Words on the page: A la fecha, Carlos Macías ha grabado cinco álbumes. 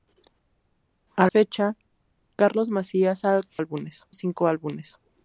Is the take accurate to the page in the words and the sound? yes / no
no